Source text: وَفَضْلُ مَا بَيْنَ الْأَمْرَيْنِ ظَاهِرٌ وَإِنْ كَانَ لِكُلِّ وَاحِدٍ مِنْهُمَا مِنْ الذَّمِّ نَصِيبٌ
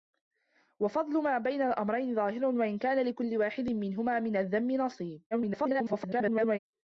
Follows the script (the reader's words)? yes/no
no